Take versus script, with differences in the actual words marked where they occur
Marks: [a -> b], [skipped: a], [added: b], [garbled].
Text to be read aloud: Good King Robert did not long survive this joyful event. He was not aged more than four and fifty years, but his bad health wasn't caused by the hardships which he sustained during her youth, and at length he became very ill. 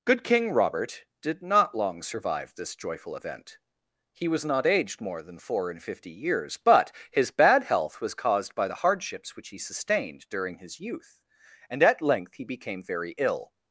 Good King Robert did not long survive this joyful event. He was not aged more than four and fifty years, but his bad health [wasn't -> was] caused by the hardships which he sustained during [her -> his] youth, and at length he became very ill.